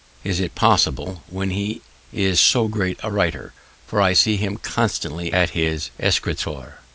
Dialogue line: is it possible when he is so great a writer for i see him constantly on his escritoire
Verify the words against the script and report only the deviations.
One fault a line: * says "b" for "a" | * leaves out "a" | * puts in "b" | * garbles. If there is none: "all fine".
* says "at" for "on"